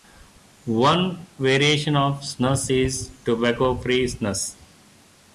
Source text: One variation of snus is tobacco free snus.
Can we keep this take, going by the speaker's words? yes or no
yes